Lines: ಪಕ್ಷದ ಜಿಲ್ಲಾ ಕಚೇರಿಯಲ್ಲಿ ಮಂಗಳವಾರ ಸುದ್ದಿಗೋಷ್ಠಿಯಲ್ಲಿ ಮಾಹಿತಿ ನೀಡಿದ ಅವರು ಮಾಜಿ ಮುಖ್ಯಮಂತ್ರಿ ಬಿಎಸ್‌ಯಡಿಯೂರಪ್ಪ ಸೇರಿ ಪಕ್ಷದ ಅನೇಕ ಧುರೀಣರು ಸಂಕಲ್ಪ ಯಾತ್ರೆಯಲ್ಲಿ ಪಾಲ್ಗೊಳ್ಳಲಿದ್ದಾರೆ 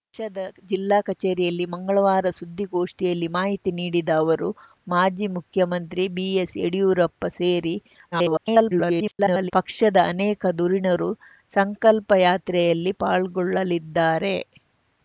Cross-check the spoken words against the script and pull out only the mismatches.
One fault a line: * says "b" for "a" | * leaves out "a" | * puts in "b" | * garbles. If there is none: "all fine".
* garbles